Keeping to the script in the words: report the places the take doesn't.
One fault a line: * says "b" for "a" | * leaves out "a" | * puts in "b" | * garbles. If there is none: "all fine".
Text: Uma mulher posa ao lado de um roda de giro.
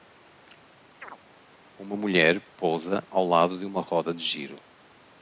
* says "uma" for "um"